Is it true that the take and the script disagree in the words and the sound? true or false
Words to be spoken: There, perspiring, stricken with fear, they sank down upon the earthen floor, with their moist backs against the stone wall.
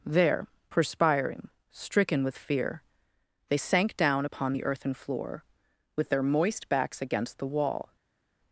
true